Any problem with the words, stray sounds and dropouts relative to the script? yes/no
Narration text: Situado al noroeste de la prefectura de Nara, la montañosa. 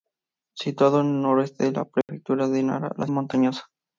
yes